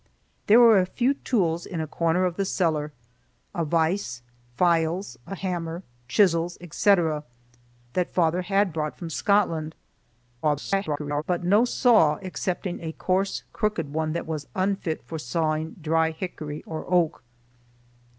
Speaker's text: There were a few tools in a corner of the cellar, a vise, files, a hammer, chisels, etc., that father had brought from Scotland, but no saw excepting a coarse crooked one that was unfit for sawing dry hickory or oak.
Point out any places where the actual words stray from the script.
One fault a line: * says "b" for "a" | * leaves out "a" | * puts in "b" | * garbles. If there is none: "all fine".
* garbles